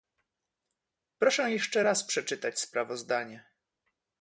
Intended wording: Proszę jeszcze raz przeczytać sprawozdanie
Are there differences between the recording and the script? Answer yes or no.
no